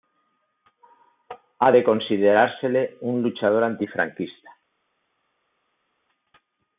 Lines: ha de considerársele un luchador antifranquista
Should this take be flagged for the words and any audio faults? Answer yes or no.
no